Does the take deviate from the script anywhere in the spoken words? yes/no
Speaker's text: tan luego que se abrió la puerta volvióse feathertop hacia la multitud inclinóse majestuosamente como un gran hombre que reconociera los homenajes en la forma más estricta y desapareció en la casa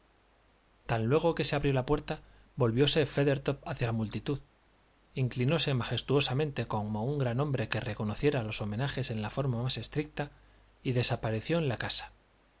no